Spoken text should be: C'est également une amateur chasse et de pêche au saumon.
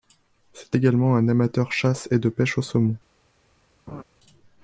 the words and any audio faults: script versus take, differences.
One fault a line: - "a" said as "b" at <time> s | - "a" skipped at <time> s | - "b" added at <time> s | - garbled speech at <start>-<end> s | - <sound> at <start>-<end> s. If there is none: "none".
- "une" said as "un" at 1.2 s
- laugh at 3.9-4.0 s